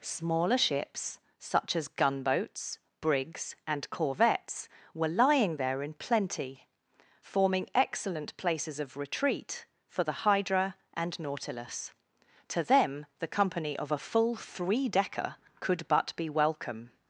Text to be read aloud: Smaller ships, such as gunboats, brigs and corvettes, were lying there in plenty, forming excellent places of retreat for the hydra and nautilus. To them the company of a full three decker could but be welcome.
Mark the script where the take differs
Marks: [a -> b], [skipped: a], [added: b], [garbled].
Smaller ships, such as gunboats, brigs and corvettes, were lying there in plenty, forming excellent places of retreat for the hydra and nautilus. To them the company of a full three decker could but be welcome.